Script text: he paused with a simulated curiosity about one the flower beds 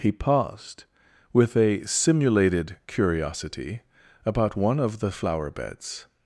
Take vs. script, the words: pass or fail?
fail